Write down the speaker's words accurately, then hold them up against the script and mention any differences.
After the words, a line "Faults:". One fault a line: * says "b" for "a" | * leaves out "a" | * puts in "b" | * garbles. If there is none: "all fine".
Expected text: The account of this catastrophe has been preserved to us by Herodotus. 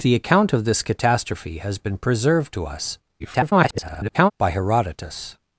The account of this catastrophe has been preserved to us [garbled] by Herodotus.
Faults:
* garbles